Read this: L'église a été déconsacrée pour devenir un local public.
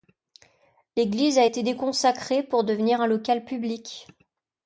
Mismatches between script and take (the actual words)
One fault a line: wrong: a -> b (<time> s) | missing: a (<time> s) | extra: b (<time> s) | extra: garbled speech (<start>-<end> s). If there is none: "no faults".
no faults